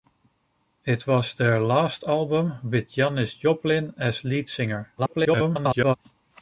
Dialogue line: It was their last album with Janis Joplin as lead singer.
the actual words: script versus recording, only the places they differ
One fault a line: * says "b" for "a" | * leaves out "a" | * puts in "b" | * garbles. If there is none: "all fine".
* garbles